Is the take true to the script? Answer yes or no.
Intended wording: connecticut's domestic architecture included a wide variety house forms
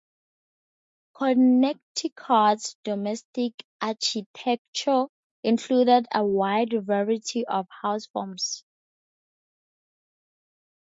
no